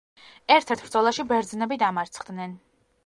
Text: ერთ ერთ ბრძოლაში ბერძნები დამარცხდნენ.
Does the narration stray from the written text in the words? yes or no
no